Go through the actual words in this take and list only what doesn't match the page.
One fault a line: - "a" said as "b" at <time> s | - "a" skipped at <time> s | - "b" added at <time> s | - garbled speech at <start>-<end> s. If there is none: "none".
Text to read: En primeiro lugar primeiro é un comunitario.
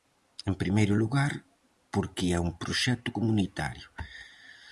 - "primeiro" said as "porque" at 1.9 s
- "proxecto" added at 2.6 s